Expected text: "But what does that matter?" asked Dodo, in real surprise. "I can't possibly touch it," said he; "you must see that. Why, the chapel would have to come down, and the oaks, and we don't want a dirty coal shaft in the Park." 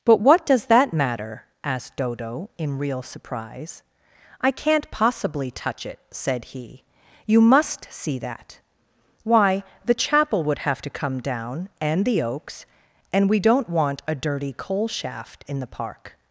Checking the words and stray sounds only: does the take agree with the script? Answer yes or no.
yes